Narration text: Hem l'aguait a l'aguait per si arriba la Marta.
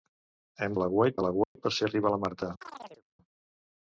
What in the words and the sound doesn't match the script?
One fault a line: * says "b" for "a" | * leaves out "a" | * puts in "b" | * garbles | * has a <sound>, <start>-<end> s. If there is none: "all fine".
* has a dropout, 1.4-1.6 s
* has a chirp, 2.6-3.0 s